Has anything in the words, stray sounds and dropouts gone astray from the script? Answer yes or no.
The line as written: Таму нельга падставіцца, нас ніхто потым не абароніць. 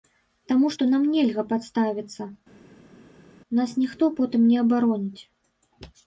yes